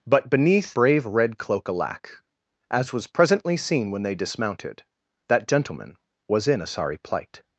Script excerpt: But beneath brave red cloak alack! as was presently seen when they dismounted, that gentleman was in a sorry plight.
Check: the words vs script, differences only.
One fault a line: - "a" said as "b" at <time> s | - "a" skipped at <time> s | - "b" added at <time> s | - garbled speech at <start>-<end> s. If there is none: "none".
none